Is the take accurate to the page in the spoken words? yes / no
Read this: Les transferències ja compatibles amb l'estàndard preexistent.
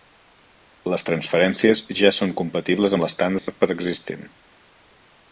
no